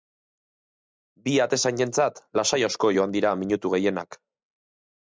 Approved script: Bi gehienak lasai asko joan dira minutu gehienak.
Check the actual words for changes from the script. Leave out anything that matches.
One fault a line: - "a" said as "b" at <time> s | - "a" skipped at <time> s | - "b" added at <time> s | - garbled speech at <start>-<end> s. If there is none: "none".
- "gehienak" said as "atezainentzat" at 1.4 s